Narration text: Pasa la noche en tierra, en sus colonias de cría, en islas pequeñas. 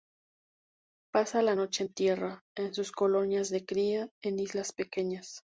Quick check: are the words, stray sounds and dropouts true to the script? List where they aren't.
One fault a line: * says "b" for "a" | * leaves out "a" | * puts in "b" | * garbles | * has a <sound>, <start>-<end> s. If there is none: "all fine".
all fine